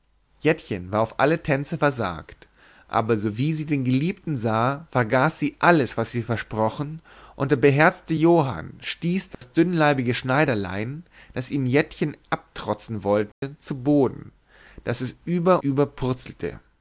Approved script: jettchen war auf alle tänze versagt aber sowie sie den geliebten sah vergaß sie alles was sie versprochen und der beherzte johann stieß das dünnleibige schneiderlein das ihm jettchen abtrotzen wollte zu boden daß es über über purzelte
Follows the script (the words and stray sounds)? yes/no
no